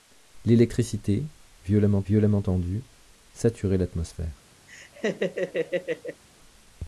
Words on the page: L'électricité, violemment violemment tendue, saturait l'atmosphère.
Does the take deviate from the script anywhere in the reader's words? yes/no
no